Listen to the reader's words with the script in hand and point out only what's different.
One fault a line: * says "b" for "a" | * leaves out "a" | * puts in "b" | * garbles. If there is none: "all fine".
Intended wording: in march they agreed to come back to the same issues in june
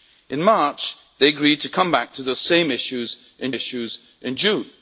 * puts in "issues in"